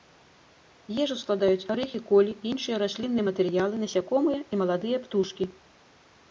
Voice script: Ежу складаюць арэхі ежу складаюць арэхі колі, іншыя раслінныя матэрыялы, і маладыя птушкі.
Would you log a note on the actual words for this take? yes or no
yes